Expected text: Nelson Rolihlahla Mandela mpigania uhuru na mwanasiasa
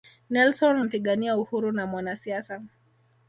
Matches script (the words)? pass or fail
fail